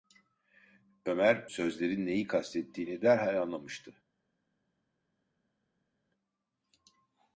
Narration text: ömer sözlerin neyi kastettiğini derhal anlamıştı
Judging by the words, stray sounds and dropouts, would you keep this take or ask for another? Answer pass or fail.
pass